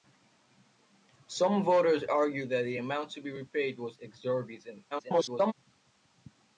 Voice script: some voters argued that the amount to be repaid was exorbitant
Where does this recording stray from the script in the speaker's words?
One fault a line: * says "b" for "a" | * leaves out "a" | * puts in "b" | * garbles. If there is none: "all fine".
* garbles